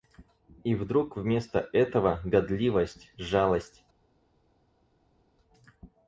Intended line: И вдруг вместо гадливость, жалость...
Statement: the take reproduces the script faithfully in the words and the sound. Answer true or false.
false